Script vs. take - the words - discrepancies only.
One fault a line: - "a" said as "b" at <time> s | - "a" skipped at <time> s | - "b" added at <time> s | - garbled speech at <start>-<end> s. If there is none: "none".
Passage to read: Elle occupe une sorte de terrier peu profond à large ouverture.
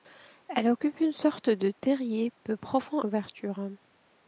- "à large" skipped at 3.0 s